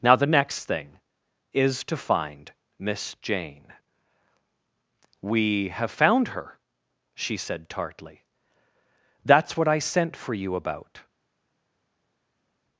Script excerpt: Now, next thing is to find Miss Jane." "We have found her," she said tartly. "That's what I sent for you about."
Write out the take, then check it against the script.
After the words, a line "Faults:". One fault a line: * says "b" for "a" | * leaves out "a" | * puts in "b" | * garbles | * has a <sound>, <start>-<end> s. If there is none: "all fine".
Now, the next thing is to find Miss Jane." "We have found her," she said tartly. "That's what I sent for you about."
Faults:
* puts in "the"